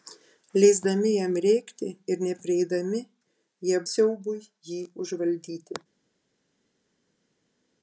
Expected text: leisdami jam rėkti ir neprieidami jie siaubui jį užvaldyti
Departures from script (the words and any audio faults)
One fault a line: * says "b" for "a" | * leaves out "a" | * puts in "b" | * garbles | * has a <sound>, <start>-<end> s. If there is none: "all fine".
all fine